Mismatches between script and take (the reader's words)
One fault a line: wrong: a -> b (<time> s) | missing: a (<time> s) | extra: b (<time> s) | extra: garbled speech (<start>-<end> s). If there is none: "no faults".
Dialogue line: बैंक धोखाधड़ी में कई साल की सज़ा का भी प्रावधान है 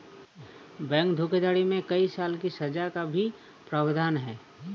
no faults